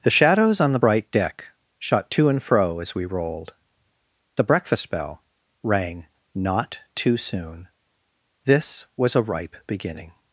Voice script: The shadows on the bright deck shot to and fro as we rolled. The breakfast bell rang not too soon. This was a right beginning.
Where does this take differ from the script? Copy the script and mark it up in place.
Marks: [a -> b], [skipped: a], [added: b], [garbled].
The shadows on the bright deck shot to and fro as we rolled. The breakfast bell rang not too soon. This was a [right -> ripe] beginning.